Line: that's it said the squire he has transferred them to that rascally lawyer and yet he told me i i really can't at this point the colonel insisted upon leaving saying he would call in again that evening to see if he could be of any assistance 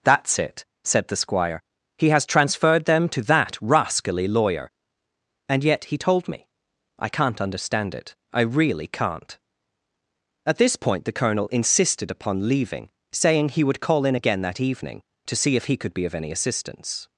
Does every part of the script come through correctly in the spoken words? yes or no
no